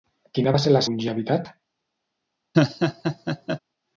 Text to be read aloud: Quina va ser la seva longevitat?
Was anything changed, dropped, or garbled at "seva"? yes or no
yes